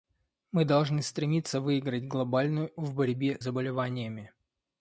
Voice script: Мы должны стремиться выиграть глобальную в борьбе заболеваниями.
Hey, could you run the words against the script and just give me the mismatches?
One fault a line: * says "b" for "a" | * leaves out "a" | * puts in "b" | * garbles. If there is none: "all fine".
all fine